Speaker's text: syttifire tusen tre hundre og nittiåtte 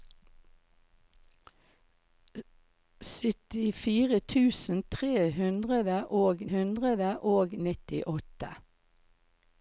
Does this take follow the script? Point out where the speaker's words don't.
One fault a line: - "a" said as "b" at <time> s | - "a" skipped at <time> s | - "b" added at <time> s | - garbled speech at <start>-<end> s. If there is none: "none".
- "hundre og" added at 6.5 s